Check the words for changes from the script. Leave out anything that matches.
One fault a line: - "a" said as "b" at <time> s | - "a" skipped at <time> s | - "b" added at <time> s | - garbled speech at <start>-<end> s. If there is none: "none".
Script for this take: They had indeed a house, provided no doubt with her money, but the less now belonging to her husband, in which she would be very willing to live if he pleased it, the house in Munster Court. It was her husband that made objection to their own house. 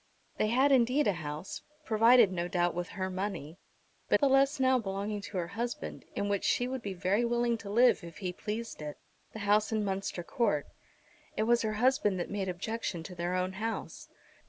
none